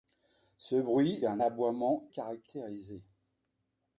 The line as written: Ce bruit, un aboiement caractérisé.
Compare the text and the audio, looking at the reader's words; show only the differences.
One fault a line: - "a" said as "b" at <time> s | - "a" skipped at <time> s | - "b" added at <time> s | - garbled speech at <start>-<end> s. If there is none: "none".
none